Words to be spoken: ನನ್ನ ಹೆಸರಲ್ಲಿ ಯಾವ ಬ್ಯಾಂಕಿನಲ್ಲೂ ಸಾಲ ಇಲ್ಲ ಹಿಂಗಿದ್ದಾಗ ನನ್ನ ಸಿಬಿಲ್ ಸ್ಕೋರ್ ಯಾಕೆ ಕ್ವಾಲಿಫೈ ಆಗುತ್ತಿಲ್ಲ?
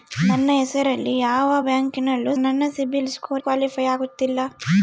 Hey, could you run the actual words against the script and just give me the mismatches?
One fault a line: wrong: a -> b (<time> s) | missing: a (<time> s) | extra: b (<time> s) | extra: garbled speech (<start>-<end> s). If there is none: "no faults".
missing: ಸಾಲ ಇಲ್ಲ ಹಿಂಗಿದ್ದಾಗ (2.3 s)
missing: ಯಾಕೆ (3.4 s)